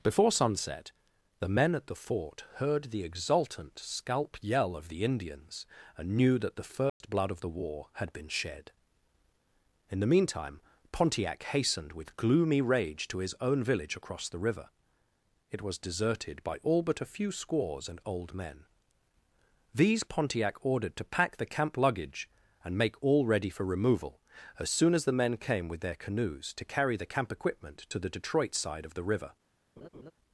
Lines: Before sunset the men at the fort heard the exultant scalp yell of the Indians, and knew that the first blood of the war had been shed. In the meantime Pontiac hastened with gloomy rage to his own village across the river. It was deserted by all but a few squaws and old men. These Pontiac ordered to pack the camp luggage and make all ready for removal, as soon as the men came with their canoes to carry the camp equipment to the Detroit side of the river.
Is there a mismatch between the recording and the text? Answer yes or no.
no